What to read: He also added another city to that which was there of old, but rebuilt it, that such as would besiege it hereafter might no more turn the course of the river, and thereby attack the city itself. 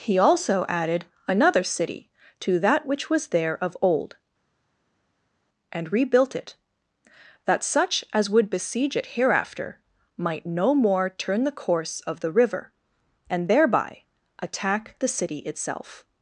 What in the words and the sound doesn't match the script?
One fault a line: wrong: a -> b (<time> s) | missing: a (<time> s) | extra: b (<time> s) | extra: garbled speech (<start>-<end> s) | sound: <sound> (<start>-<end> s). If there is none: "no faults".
wrong: but -> and (5.7 s)